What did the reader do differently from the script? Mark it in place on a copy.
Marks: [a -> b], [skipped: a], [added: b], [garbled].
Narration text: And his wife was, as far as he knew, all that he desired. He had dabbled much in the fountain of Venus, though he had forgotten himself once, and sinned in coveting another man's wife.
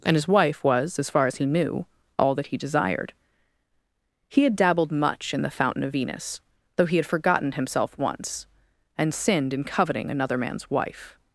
And his wife was, as far as he knew, all that he desired. He had dabbled much in the fountain of Venus, though he had forgotten himself once, and sinned in coveting another man's wife.